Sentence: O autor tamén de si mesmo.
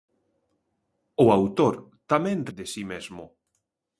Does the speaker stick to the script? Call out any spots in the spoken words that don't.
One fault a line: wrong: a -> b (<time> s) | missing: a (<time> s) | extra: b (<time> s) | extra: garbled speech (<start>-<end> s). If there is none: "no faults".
no faults